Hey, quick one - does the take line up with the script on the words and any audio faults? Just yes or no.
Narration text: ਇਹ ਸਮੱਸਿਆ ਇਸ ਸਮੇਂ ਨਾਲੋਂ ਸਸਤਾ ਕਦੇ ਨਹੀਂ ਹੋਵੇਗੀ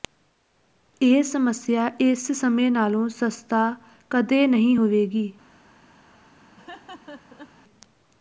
no